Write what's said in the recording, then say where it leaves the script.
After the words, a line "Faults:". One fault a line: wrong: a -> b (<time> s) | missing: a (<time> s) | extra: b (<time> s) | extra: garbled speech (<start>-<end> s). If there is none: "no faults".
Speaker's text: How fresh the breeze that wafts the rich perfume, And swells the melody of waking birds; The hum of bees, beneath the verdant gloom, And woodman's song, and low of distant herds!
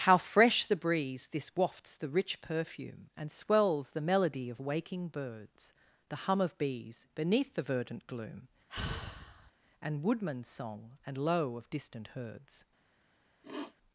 How fresh the breeze this wafts the rich perfume, And swells the melody of waking birds; The hum of bees, beneath the verdant gloom, And woodman's song, and low of distant herds!
Faults:
wrong: that -> this (1.3 s)